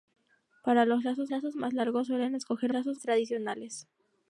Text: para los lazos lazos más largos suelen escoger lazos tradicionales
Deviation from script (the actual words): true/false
false